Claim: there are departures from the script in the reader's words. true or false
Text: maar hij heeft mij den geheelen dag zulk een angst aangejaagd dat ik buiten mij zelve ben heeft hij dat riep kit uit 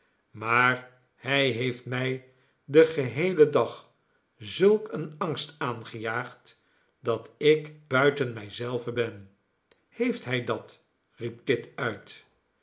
false